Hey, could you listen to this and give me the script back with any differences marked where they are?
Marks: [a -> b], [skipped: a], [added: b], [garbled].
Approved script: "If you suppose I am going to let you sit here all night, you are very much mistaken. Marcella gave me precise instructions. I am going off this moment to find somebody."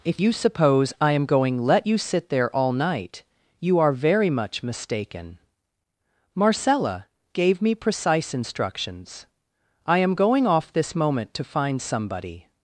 "If you suppose I am going [skipped: to] let you sit [here -> there] all night, you are very much mistaken. Marcella gave me precise instructions. I am going off this moment to find somebody."